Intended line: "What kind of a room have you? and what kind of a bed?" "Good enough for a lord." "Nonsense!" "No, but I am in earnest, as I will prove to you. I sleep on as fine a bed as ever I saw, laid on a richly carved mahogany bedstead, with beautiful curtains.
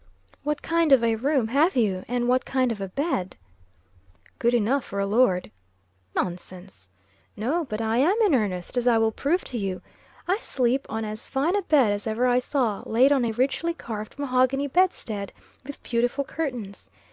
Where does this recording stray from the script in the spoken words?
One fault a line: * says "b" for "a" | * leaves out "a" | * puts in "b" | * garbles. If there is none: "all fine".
all fine